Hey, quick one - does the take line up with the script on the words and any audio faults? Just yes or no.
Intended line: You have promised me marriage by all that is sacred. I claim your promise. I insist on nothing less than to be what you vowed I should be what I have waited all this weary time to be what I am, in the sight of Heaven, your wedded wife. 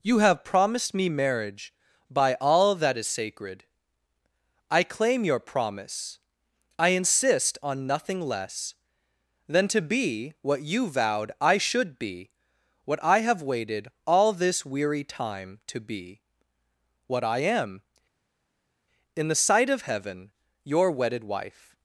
yes